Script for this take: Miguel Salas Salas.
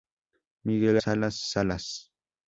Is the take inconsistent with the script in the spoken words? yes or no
no